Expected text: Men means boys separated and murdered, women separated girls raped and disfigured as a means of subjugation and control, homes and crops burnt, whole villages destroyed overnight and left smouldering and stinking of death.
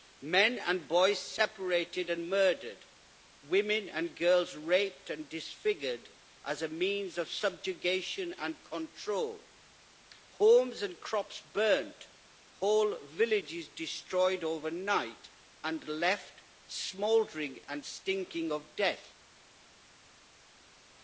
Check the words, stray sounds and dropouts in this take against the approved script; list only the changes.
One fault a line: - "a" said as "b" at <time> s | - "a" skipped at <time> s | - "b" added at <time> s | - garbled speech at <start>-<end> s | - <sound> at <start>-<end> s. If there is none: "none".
- "means" said as "and" at 0.6 s
- "separated" said as "and" at 3.9 s